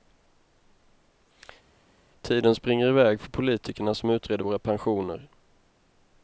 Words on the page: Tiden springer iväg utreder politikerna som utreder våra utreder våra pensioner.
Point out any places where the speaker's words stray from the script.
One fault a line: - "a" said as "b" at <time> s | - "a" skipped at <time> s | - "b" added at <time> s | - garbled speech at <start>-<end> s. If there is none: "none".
- "utreder" said as "för" at 3.2 s
- "utreder våra" skipped at 4.6 s